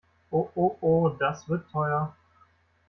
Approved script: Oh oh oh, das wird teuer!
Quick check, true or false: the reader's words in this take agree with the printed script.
true